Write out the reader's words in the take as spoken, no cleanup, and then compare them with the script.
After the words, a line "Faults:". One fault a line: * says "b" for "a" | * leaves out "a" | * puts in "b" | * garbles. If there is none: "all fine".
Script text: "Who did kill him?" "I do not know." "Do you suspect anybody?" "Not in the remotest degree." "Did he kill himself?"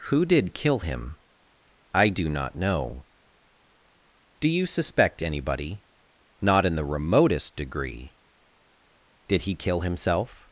"Who did kill him?" "I do not know." "Do you suspect anybody?" "Not in the remotest degree." "Did he kill himself?"
Faults:
all fine